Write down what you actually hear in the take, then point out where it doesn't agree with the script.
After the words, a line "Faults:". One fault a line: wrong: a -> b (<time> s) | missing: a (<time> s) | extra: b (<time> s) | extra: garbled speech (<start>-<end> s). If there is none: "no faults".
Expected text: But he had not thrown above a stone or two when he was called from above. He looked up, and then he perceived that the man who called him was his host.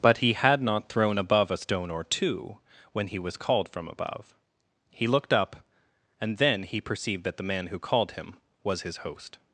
But he had not thrown above a stone or two when he was called from above. He looked up, and then he perceived that the man who called him was his host.
Faults:
no faults